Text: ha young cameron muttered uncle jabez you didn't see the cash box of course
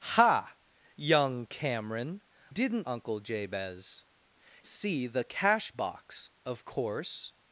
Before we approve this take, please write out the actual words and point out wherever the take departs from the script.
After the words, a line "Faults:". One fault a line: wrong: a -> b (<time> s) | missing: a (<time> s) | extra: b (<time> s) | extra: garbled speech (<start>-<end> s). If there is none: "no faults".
ha young cameron didn't uncle jabez see the cash box of course
Faults:
wrong: muttered -> didn't (2.5 s)
missing: you didn't (4.0 s)